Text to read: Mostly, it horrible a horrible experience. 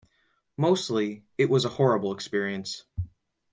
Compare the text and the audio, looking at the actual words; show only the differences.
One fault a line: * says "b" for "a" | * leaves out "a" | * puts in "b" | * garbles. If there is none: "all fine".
* says "was" for "horrible"